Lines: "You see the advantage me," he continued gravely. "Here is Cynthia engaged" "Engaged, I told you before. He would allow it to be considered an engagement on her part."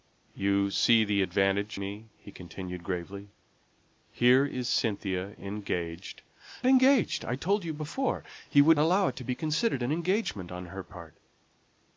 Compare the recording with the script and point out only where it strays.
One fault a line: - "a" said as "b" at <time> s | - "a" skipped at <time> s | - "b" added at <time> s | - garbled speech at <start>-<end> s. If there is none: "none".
none